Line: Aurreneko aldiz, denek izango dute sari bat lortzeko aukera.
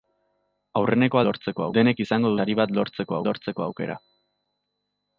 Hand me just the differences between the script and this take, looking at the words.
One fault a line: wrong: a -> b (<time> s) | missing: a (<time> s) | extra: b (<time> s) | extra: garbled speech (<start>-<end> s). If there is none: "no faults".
wrong: aldiz -> lortzeko (1.3 s)
missing: dute (2.3 s)
extra: lortzeko (3.3 s)